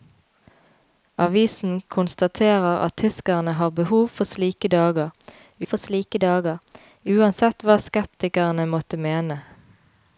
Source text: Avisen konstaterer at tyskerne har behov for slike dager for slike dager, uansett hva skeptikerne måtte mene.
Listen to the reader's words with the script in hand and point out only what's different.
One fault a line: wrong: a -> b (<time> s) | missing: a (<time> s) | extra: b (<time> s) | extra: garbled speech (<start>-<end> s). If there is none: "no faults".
no faults